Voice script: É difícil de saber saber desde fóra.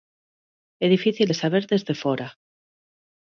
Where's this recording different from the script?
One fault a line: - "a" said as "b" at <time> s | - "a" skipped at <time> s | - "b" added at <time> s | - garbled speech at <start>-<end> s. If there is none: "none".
- "saber" skipped at 1.6 s